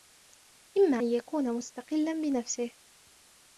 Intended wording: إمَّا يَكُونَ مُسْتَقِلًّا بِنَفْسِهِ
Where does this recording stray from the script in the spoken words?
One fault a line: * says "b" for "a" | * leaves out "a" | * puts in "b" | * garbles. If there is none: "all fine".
all fine